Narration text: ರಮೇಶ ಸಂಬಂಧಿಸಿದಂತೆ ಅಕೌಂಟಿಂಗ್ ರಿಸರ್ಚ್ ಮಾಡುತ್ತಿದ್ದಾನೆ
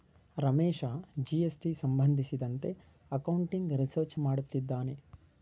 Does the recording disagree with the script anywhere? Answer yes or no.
yes